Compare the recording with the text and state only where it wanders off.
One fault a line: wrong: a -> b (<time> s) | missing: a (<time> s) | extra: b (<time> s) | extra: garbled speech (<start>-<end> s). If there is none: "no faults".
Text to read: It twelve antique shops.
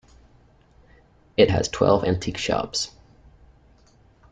extra: has (1.5 s)